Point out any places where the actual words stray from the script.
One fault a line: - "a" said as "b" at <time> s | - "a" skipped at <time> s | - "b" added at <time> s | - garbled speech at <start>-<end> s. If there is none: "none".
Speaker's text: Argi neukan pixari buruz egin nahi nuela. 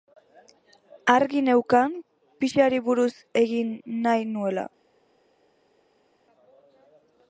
none